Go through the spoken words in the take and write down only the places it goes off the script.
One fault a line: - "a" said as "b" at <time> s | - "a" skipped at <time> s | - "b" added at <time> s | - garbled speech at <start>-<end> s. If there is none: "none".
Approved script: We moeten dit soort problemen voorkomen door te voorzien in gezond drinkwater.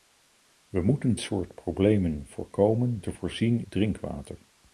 - "dit" skipped at 1.1 s
- "door" skipped at 3.0 s
- "in gezond" skipped at 3.6 s